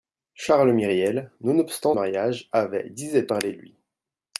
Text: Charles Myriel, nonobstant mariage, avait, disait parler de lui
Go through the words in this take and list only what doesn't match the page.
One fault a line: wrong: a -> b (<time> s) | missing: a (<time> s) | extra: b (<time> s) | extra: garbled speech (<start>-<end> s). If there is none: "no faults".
no faults